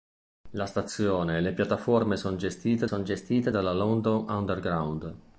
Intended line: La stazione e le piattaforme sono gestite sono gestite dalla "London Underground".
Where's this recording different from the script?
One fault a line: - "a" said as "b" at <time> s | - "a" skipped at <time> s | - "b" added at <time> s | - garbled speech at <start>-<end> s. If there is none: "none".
none